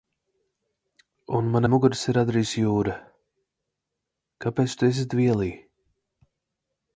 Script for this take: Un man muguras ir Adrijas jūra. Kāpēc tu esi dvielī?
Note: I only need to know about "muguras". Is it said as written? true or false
true